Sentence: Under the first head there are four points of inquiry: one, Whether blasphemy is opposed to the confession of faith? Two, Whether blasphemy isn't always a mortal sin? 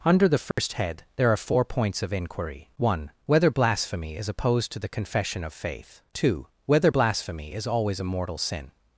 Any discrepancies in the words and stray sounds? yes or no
yes